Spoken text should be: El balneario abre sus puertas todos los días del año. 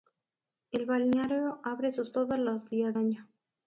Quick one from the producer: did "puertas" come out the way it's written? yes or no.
no